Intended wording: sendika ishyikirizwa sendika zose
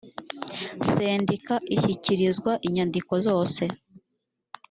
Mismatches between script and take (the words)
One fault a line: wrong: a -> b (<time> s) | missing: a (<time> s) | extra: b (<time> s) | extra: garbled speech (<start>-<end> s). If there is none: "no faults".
wrong: sendika -> inyandiko (2.7 s)